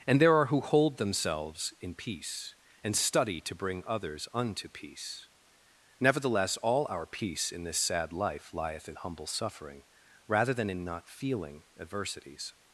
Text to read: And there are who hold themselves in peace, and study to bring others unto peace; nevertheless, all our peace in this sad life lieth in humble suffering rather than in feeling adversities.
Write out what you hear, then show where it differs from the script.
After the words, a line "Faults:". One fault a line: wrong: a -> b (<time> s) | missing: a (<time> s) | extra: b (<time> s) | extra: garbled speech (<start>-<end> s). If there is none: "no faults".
And there are who hold themselves in peace, and study to bring others unto peace; nevertheless, all our peace in this sad life lieth in humble suffering rather than in not feeling adversities.
Faults:
extra: not (10.8 s)